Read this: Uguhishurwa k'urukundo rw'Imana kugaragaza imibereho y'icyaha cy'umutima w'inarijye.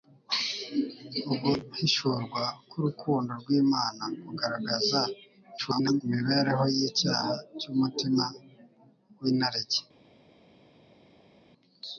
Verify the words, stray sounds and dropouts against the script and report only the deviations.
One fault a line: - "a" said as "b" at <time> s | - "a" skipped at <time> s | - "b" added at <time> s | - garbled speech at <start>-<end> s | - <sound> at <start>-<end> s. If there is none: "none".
- garbled speech at 5.6-6.0 s